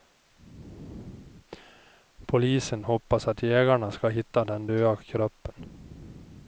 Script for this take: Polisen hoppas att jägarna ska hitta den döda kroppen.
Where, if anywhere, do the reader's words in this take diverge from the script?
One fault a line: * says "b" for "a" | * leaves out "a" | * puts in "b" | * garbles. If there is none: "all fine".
all fine